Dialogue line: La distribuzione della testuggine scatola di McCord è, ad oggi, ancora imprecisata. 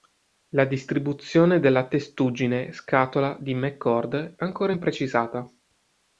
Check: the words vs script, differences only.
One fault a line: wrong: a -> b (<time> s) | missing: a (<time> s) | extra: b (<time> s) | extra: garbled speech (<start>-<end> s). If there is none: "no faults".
missing: è ad oggi (4.4 s)